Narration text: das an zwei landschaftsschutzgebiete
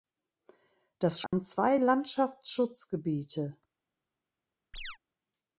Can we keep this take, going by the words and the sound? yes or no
no